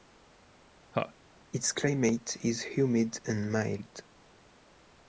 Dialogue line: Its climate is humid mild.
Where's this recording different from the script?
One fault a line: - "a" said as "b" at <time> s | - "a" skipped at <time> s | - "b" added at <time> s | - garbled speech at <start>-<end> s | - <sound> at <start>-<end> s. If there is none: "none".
- laugh at 0.9-1.1 s
- "and" added at 3.2 s